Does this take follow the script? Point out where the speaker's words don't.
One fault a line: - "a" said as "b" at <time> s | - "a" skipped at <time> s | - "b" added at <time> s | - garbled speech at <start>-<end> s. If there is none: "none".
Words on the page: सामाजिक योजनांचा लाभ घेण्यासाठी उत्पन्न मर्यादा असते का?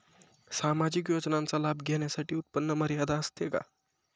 none